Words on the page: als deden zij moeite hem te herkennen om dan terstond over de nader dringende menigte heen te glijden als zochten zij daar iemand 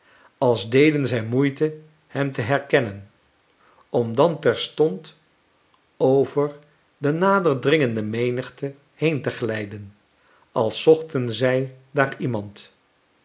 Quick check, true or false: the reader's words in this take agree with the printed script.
true